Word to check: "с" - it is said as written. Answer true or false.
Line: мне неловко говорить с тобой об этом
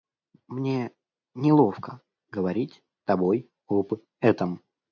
false